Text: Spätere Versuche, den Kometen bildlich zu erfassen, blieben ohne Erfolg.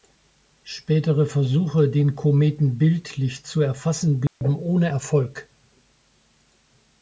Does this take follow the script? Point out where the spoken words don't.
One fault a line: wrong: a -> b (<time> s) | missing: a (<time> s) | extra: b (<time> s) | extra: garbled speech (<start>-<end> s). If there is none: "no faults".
no faults